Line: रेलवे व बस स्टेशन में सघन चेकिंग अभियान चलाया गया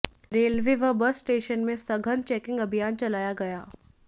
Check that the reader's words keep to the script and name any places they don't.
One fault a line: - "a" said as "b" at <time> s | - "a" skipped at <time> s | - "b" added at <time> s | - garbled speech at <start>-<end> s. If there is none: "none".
none